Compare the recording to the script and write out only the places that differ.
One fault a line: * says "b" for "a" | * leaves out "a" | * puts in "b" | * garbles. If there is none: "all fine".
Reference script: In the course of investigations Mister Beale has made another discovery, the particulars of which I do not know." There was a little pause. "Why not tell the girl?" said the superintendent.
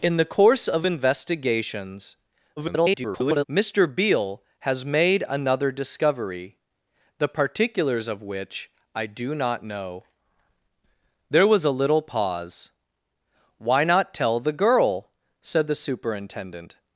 * garbles